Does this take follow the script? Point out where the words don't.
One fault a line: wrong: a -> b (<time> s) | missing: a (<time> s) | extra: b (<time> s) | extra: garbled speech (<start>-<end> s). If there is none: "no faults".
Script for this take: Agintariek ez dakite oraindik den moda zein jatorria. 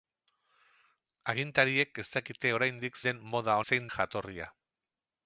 no faults